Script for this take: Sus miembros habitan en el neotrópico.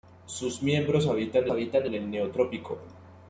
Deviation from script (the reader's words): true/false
true